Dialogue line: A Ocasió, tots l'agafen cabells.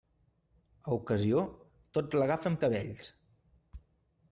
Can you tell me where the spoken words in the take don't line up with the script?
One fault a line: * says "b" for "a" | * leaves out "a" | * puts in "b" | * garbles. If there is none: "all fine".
all fine